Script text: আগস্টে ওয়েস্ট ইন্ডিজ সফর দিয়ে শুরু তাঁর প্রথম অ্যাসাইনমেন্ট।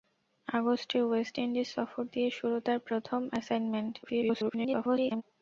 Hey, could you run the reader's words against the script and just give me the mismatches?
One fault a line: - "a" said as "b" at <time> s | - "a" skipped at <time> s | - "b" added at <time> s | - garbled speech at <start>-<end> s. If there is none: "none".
- garbled speech at 4.0-5.2 s